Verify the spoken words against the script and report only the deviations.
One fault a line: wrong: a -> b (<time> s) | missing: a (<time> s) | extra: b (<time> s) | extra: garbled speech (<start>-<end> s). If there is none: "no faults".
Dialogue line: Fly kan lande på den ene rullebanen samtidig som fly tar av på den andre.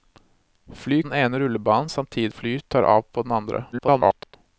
missing: kan lande på (1.0 s)
missing: som (2.3 s)
extra: garbled speech (3.7-4.4 s)